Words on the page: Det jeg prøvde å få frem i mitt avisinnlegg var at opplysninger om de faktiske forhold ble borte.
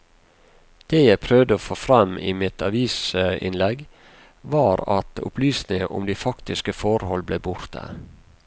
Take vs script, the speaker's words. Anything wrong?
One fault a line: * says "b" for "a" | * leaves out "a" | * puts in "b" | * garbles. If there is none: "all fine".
all fine